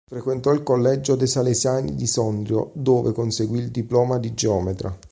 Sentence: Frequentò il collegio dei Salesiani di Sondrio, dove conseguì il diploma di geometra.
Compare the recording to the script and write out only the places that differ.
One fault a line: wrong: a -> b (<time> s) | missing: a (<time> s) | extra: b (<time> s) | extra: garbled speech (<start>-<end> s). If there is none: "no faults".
no faults